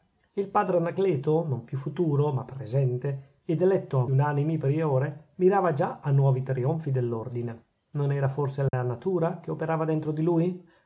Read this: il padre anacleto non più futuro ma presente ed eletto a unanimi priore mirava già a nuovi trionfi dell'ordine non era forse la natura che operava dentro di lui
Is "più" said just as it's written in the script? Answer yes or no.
yes